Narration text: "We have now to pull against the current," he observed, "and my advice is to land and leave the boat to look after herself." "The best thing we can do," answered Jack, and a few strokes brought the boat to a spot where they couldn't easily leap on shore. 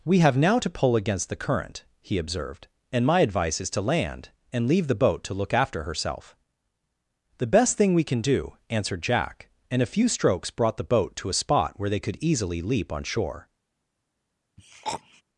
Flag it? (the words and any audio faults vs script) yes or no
yes